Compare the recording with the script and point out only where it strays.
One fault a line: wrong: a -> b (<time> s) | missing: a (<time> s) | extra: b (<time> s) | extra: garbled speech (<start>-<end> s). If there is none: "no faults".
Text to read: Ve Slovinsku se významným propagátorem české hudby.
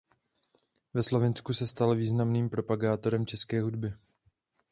extra: stal (1.7 s)